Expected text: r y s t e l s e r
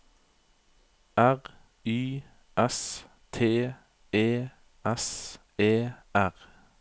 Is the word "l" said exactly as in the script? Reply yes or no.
no